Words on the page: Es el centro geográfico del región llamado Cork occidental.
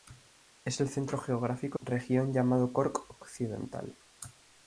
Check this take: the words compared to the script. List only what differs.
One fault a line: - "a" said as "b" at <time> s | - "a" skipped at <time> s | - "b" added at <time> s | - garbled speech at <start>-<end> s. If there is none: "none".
- "del" skipped at 1.8 s